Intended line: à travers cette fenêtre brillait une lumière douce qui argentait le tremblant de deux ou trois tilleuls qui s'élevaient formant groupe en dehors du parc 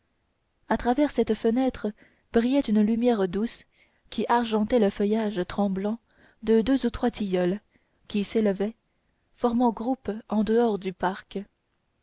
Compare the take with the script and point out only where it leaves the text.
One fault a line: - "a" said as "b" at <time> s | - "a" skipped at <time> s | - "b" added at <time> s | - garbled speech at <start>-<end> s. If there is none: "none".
- "feuillage" added at 4.9 s